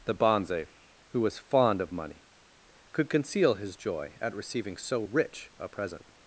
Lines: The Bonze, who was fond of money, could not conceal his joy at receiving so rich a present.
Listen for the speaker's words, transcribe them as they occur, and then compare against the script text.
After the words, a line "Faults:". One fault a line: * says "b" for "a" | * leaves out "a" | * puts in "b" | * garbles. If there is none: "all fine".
The Bonze, who was fond of money, could conceal his joy at receiving so rich a present.
Faults:
* leaves out "not"